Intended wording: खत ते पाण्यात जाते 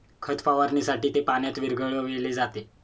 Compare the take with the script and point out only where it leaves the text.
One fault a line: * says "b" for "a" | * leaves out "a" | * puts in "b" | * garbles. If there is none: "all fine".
* puts in "फवारणीसाठी"
* puts in "विरघळविले"